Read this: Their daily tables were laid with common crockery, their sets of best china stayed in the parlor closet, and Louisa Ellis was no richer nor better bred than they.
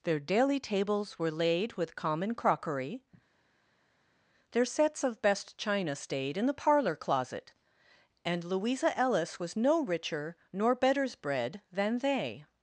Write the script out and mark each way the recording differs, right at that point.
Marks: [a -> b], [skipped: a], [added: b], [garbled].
Their daily tables were laid with common crockery, their sets of best china stayed in the parlor closet, and Louisa Ellis was no richer nor [better -> betters] bred than they.